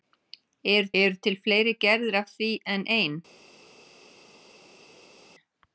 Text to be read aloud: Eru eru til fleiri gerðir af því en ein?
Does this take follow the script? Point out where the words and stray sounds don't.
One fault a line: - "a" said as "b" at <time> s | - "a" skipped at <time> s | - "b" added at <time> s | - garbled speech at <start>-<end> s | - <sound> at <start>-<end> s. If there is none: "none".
none